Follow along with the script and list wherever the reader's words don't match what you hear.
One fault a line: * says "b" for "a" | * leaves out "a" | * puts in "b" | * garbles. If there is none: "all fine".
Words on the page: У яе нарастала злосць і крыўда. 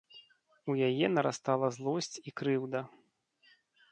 all fine